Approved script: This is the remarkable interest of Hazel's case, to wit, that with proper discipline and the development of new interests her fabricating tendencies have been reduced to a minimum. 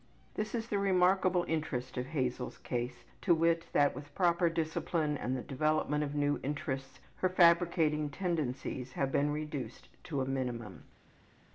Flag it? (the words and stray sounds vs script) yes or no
no